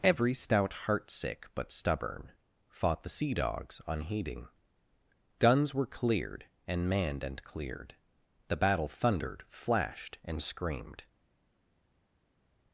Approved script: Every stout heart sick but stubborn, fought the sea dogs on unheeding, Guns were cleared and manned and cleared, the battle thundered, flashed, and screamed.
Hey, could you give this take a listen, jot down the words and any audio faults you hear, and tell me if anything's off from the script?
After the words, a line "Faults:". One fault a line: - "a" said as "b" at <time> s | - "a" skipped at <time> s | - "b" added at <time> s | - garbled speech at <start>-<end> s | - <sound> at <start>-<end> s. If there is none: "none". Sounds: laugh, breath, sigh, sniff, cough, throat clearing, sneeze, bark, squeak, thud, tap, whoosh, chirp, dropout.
Every stout heart sick but stubborn, fought the sea dogs unheeding, Guns were cleared and manned and cleared, the battle thundered, flashed, and screamed.
Faults:
- "on" skipped at 3.8 s